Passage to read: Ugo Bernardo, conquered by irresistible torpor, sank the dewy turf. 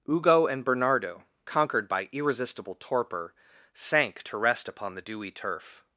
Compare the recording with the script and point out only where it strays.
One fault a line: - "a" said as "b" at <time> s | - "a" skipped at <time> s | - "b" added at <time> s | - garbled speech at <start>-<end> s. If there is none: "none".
- "and" added at 0.5 s
- "to rest upon" added at 4.2 s